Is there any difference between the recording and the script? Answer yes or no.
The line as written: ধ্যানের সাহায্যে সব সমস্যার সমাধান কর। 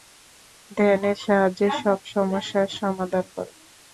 no